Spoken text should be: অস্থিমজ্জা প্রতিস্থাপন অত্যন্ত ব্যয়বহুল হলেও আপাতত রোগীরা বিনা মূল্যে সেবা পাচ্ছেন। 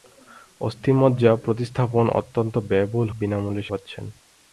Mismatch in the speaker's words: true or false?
true